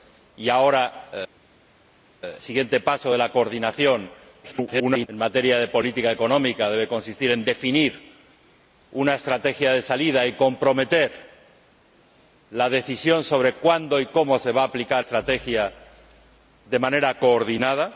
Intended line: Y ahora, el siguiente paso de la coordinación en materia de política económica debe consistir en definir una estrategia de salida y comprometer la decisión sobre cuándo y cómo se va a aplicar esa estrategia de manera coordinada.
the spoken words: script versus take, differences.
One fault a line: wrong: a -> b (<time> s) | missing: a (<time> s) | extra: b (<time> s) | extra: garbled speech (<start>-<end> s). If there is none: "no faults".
missing: el (1.1 s)
extra: garbled speech (4.4-5.1 s)
missing: esa (15.0 s)